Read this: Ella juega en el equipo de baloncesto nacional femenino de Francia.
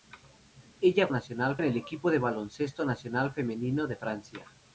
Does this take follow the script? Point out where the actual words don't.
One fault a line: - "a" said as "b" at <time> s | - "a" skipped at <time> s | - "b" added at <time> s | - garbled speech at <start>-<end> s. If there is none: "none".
- "juega" said as "nacional" at 1.1 s